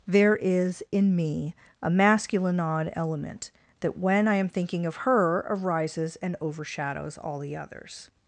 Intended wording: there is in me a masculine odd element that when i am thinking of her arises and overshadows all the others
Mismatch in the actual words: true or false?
false